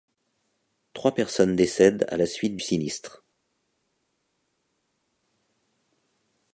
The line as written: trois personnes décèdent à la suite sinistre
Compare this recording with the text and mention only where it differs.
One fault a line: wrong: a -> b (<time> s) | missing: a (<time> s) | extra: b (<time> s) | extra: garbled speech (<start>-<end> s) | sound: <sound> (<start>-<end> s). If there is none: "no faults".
no faults